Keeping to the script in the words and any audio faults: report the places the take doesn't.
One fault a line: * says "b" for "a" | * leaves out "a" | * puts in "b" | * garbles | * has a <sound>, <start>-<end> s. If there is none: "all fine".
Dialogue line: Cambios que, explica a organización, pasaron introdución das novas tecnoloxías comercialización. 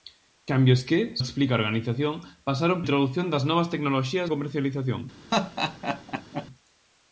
* has a laugh, 5.3-6.5 s